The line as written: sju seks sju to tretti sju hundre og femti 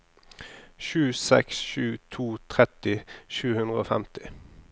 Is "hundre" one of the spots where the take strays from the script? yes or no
no